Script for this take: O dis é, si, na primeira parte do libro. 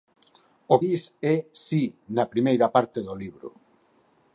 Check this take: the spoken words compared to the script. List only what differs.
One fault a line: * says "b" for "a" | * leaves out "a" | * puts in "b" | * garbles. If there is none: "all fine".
all fine